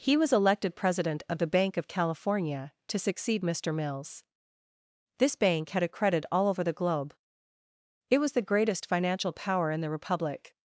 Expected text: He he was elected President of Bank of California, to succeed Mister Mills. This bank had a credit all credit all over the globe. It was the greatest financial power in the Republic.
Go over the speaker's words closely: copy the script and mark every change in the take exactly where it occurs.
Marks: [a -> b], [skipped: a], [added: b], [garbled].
He [skipped: he] was elected President of [added: the] Bank of California, to succeed Mister Mills. This bank had a credit all [skipped: credit all] over the globe. It was the greatest financial power in the Republic.